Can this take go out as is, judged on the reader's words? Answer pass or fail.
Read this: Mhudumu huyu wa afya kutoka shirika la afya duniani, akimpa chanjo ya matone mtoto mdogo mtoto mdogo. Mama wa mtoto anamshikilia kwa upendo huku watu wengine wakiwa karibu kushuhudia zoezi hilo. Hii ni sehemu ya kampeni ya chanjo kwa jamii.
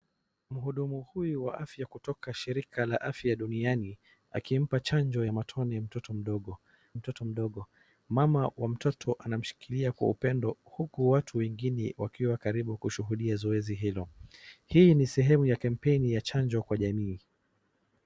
pass